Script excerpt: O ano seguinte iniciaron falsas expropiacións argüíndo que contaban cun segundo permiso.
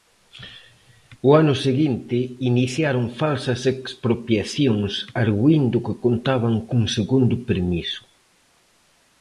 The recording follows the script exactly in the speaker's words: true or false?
true